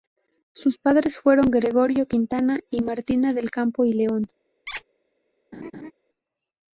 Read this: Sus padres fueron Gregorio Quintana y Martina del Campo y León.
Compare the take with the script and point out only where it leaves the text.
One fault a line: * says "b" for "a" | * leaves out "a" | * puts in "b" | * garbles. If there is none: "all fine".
all fine